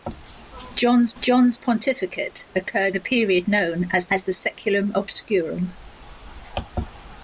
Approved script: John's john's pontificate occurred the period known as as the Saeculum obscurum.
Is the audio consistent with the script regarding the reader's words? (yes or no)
yes